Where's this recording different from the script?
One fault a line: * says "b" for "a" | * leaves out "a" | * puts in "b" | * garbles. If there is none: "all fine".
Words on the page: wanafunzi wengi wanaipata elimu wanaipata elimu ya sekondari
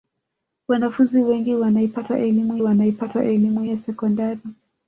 all fine